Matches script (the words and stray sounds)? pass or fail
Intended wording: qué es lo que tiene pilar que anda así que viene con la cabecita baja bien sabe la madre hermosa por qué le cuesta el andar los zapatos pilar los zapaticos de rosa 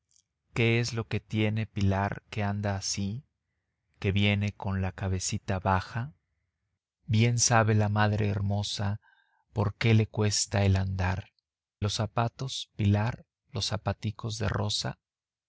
pass